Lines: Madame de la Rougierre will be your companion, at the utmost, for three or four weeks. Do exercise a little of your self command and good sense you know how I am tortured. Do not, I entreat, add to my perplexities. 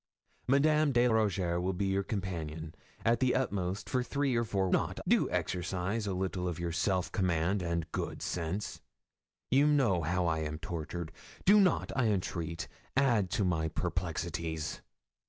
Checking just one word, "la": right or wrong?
wrong